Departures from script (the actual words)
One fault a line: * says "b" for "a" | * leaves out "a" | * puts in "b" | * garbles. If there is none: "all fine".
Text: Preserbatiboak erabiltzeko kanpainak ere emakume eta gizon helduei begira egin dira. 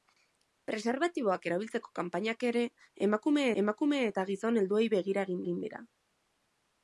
* puts in "emakume"
* puts in "egin"